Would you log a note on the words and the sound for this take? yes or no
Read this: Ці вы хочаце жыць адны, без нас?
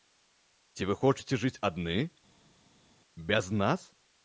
no